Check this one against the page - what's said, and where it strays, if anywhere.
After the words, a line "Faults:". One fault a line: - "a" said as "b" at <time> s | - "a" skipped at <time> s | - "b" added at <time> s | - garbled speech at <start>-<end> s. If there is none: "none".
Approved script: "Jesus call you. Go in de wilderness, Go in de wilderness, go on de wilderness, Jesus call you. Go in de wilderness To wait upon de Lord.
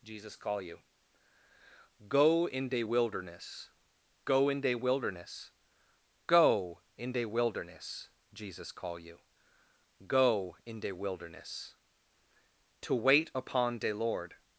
"Jesus call you. Go in de wilderness, Go in de wilderness, go in de wilderness, Jesus call you. Go in de wilderness To wait upon de Lord.
Faults:
- "on" said as "in" at 7.0 s